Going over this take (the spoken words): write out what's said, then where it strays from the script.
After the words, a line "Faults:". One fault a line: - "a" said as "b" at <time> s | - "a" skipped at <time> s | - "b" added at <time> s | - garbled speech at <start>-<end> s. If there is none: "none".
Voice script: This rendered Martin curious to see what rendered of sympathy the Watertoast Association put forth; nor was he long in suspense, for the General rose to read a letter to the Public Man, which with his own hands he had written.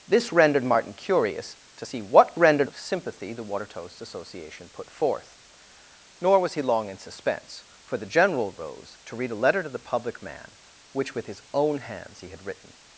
This rendered Martin curious to see what rendered of sympathy the Watertoast Association put forth; nor was he long in suspense, for the General rose to read a letter to the Public Man, which with his own hands he had written.
Faults:
none